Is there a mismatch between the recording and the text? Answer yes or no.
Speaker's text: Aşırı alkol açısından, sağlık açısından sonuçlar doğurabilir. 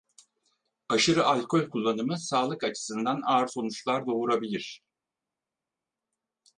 yes